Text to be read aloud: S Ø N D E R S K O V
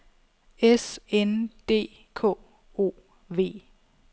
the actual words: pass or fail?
fail